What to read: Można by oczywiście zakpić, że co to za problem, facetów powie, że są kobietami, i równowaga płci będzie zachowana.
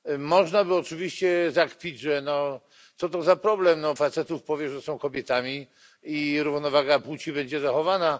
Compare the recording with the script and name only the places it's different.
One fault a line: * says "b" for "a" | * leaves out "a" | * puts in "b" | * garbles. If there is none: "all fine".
all fine